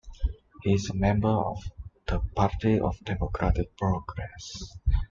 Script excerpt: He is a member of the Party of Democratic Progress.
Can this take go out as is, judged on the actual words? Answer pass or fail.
pass